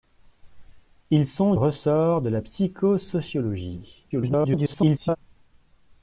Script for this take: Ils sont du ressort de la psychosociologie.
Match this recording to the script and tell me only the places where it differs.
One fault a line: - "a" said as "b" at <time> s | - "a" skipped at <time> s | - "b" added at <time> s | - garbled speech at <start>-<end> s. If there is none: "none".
- "du" skipped at 1.5 s
- garbled speech at 4.1-5.2 s